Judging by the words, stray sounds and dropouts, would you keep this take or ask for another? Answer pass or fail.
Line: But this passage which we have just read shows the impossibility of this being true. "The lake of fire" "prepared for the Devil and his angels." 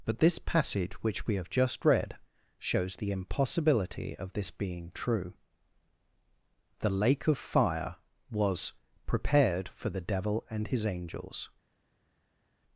fail